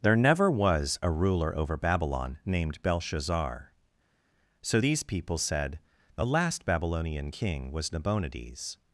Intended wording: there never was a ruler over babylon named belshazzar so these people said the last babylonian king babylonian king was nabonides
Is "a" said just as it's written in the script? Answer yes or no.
yes